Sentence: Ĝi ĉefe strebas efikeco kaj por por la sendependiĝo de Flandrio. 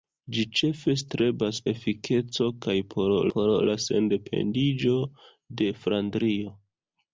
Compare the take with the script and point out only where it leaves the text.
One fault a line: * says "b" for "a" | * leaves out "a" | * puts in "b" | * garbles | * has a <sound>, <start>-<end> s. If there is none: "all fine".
all fine